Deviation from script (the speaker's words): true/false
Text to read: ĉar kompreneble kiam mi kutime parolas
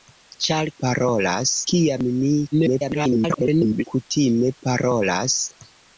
true